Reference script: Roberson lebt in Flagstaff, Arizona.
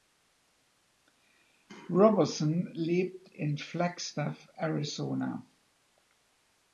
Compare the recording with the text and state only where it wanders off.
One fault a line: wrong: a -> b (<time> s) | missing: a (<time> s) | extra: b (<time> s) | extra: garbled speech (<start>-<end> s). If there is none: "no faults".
no faults